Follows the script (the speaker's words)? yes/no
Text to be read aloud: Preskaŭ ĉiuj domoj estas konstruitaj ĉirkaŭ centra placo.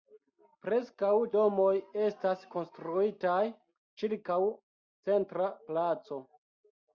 no